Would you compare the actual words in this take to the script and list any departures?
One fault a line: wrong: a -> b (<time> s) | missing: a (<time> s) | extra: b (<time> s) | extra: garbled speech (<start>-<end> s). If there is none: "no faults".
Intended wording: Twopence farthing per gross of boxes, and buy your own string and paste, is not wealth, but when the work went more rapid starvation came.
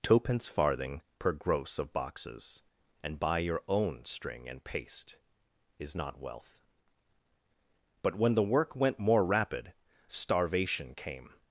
no faults